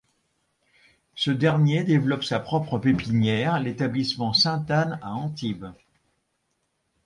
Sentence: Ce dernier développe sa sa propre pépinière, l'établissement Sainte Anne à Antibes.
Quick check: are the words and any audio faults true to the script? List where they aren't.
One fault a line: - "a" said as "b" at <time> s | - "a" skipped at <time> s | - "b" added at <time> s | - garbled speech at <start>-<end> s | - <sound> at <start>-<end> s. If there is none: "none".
- "sa" skipped at 2.4 s